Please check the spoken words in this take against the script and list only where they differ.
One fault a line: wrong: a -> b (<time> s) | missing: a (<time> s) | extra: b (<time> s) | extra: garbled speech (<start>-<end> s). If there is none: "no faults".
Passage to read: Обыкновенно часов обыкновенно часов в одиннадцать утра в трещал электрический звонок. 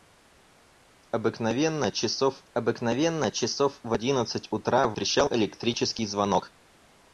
no faults